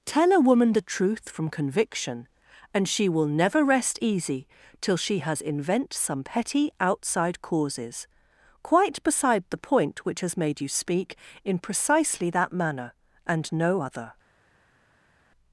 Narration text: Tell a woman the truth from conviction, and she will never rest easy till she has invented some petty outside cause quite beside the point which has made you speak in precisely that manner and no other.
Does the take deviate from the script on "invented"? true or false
true